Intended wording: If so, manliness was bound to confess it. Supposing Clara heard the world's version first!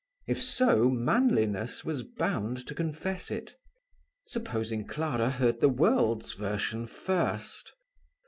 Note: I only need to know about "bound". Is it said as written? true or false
true